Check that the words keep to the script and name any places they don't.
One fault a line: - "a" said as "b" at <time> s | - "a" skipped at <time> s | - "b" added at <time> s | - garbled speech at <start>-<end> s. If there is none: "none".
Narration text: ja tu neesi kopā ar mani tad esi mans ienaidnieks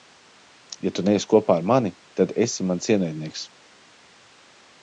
none